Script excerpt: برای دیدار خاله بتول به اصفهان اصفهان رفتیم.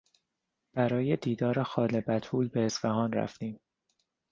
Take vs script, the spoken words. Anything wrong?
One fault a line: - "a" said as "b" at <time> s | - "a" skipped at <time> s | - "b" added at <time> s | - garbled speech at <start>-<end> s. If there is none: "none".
- "اصفهان" skipped at 3.1 s